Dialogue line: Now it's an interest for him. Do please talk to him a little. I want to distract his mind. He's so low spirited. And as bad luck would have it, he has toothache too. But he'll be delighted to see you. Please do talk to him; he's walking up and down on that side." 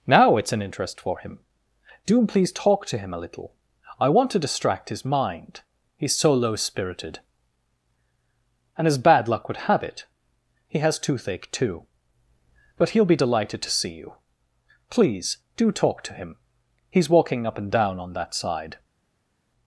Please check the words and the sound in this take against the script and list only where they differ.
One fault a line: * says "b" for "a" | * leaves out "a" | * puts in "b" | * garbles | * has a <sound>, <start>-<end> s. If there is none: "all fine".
all fine